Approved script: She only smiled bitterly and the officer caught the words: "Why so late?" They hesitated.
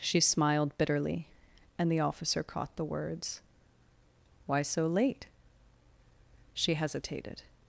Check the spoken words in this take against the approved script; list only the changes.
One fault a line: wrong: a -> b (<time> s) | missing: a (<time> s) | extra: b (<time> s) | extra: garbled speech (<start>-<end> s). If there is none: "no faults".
missing: only (0.2 s)
wrong: They -> She (6.5 s)